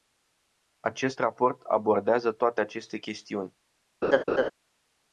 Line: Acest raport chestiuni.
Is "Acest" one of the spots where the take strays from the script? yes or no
no